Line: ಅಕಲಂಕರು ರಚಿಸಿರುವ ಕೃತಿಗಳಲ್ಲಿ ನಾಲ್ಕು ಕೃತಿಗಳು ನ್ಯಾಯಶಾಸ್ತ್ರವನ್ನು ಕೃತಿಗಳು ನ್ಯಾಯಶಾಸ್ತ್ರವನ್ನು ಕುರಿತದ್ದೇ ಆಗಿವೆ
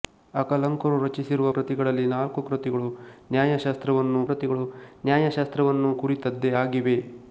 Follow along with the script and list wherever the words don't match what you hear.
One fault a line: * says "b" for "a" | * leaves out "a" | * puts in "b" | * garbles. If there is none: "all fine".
all fine